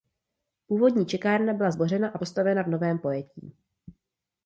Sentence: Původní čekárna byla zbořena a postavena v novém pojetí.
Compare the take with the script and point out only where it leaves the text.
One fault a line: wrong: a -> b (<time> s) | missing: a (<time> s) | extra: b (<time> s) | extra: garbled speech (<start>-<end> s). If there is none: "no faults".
no faults